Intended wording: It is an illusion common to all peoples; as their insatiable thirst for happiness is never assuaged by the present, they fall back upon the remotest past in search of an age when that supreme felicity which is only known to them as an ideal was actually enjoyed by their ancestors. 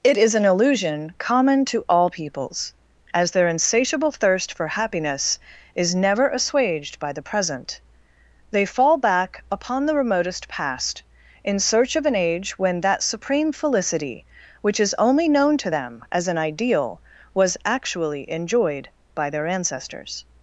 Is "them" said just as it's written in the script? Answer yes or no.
yes